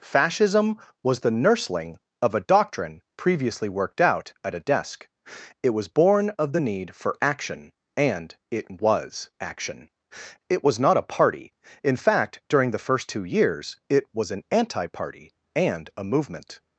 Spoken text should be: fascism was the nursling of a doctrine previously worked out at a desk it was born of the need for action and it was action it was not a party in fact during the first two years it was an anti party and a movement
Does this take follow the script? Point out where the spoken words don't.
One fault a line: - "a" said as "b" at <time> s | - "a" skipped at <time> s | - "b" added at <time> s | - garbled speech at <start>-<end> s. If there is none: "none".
none